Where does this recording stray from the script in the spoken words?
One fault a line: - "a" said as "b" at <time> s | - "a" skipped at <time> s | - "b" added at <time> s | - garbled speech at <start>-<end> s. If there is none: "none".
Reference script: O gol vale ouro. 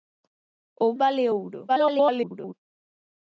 - "gol" skipped at 0.9 s
- garbled speech at 1.7-2.5 s